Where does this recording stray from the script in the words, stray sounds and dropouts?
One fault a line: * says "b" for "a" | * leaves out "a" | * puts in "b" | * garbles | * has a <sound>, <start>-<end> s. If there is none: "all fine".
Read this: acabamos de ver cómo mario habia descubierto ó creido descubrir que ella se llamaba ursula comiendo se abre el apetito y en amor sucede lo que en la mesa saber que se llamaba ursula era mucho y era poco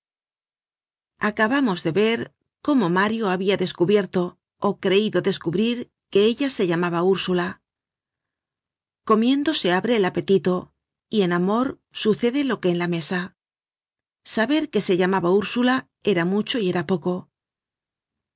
all fine